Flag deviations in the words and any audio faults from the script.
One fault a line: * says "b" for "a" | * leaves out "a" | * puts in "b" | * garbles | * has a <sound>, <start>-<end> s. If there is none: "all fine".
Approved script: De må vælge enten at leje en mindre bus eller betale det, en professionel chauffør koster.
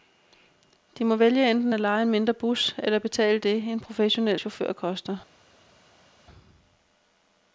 all fine